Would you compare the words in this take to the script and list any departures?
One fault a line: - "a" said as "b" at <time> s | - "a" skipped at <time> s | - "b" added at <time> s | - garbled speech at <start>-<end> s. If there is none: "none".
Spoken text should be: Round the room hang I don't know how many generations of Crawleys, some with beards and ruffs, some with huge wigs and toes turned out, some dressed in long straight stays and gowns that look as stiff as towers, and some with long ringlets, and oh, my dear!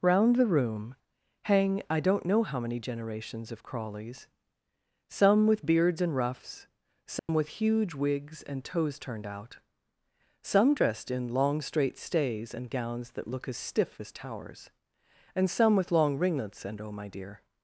none